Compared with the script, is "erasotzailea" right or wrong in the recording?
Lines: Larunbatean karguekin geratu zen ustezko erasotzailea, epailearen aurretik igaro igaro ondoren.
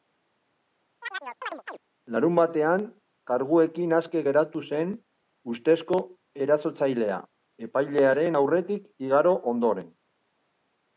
right